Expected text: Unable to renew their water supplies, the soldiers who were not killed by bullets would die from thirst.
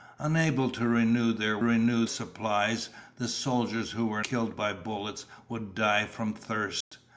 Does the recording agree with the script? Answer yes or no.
no